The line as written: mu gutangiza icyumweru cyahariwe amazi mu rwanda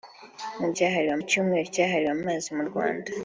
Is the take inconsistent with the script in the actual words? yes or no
yes